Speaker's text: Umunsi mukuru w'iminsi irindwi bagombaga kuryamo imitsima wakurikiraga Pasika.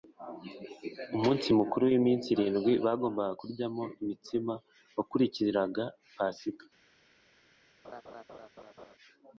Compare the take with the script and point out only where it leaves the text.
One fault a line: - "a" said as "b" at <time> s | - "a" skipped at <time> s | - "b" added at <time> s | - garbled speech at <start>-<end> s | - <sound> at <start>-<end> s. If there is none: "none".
- laugh at 7.8-9.0 s